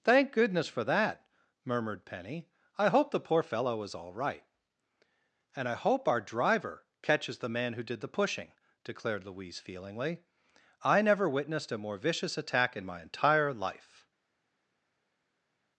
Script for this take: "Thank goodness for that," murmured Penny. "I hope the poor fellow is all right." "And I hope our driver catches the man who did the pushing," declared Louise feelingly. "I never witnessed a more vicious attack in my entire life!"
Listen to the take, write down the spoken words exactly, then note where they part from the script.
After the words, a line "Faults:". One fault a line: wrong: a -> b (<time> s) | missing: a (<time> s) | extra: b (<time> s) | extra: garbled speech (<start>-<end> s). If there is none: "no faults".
"Thank goodness for that," murmured Penny. "I hope the poor fellow is all right." "And I hope our driver catches the man who did the pushing," declared Louise feelingly. "I never witnessed a more vicious attack in my entire life!"
Faults:
no faults